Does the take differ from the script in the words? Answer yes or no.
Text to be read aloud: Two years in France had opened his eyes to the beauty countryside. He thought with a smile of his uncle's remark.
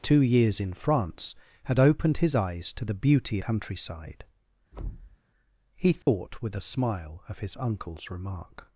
no